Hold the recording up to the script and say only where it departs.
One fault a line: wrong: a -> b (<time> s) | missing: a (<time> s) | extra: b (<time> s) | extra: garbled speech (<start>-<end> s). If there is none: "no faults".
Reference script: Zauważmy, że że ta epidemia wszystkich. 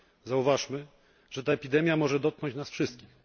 missing: że (1.4 s)
extra: może dotknąć nas (2.0 s)